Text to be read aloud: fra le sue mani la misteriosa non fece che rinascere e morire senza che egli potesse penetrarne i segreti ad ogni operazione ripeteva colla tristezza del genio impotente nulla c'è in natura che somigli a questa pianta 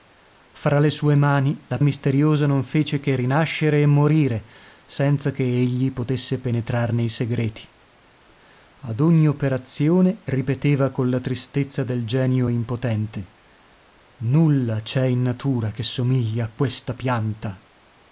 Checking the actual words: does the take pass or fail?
pass